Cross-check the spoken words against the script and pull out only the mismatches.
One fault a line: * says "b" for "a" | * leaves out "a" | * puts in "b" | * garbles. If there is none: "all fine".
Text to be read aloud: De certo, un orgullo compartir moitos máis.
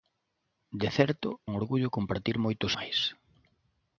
all fine